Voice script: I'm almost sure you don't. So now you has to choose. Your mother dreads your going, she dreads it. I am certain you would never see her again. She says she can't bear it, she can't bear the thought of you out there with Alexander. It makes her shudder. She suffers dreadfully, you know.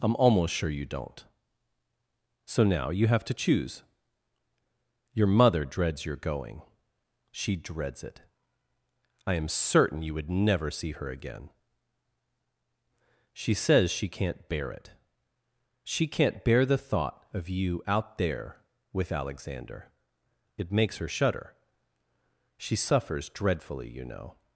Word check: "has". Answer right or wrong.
wrong